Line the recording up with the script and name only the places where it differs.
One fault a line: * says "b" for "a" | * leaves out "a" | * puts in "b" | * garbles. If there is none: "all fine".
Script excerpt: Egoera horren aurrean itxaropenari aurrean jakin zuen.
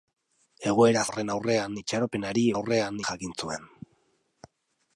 all fine